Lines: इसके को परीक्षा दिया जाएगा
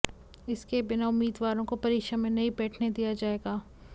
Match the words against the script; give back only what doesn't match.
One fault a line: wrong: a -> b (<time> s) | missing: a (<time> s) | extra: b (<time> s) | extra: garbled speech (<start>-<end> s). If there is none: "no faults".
extra: बिना उम्मीदवारों (0.8 s)
extra: में नहीं बैठने (2.2 s)